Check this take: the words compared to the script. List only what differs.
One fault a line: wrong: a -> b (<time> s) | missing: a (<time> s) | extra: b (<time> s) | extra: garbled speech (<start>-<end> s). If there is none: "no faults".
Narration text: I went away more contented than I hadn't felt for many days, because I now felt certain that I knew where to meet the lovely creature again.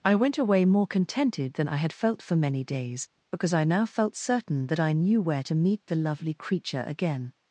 wrong: hadn't -> had (1.7 s)